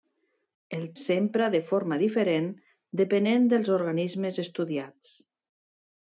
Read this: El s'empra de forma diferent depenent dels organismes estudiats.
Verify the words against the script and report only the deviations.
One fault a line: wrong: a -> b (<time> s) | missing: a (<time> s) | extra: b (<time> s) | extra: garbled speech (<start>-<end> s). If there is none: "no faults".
no faults